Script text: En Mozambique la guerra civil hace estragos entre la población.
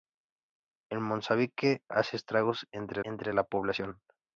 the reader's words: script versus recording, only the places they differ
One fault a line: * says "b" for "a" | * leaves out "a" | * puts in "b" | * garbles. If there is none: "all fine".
* leaves out "la guerra civil"
* puts in "entre"